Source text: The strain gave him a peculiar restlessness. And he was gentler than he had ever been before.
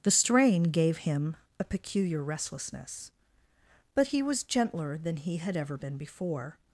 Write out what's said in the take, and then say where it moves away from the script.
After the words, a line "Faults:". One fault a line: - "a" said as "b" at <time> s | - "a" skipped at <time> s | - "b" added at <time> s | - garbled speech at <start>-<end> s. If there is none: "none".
The strain gave him a peculiar restlessness. But he was gentler than he had ever been before.
Faults:
- "And" said as "But" at 3.9 s